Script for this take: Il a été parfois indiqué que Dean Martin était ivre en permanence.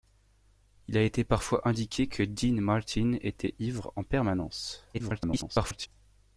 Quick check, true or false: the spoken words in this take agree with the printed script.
false